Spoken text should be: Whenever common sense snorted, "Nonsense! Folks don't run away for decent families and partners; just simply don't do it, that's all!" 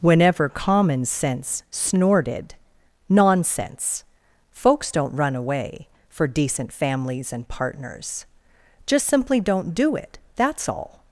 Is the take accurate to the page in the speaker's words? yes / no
yes